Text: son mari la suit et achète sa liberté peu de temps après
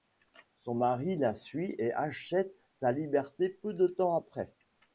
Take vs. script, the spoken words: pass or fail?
pass